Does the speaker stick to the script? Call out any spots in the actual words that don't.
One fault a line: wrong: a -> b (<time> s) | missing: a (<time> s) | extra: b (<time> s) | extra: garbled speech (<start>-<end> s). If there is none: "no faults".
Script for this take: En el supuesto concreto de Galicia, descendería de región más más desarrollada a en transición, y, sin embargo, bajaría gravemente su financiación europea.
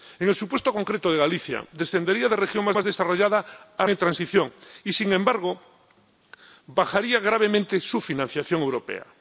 no faults